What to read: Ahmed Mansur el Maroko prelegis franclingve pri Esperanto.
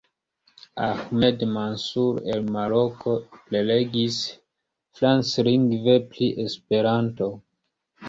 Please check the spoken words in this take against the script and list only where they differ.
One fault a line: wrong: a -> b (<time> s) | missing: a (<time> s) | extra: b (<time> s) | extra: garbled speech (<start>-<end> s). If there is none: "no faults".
no faults